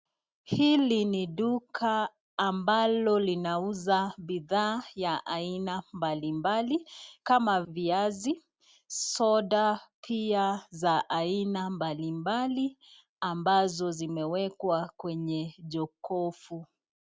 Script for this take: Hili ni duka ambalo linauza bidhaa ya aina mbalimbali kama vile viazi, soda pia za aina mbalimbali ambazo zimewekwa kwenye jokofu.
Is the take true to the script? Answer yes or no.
no